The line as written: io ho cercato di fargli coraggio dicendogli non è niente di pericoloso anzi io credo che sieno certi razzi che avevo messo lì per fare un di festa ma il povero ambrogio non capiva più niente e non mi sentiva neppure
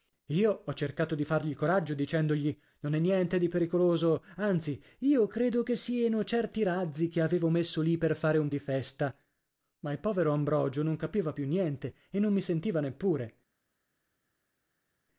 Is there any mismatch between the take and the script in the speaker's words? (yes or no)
no